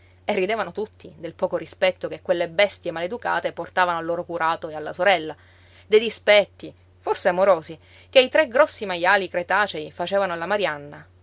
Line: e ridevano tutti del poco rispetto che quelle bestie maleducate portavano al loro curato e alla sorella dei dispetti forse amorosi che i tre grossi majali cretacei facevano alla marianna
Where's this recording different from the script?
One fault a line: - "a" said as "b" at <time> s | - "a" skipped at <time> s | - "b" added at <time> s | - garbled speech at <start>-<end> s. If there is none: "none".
none